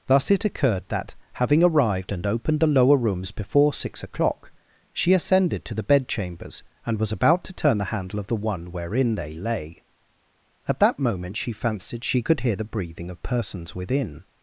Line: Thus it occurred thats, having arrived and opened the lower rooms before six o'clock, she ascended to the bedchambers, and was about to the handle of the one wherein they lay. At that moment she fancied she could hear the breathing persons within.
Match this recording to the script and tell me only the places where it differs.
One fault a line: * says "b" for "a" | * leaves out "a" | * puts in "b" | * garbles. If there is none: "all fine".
* says "that" for "thats"
* puts in "turn"
* puts in "of"